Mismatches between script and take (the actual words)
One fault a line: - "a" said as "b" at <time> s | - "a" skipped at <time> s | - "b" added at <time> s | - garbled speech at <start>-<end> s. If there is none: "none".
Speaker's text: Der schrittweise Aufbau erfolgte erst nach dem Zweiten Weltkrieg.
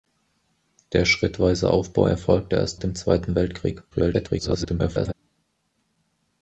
- "nach" skipped at 2.8 s
- garbled speech at 3.9-5.1 s